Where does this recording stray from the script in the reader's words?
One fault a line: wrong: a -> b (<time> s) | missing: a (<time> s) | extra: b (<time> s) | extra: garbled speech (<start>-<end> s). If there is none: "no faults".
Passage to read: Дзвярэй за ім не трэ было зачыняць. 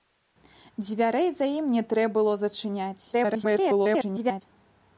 extra: garbled speech (3.1-4.4 s)